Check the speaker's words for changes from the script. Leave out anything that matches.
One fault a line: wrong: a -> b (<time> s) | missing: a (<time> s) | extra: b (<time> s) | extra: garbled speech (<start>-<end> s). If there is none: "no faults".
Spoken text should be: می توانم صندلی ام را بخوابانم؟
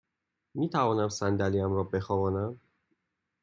no faults